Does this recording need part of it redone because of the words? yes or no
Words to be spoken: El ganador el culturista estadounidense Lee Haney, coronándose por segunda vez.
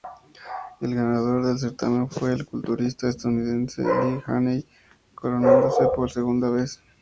yes